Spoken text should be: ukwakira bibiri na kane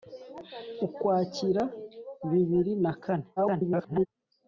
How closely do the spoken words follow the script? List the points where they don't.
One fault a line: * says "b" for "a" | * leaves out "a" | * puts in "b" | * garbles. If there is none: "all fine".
* garbles